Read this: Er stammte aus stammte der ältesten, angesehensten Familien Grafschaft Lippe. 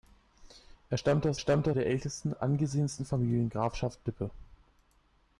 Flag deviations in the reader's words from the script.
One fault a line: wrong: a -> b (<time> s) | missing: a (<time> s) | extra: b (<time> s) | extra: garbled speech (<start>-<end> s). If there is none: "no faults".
no faults